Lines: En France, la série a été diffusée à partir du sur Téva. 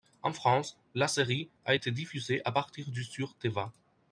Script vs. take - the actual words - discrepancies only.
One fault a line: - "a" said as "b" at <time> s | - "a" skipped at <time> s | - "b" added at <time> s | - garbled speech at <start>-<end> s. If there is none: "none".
none